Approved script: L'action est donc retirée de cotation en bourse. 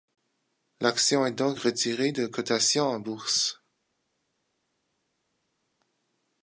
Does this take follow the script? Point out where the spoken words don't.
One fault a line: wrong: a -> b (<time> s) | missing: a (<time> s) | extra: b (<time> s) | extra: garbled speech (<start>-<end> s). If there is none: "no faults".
no faults